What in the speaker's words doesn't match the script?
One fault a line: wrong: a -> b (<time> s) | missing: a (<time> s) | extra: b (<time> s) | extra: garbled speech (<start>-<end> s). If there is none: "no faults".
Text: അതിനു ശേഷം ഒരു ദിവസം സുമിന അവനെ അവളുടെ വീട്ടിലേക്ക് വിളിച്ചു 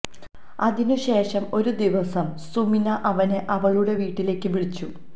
no faults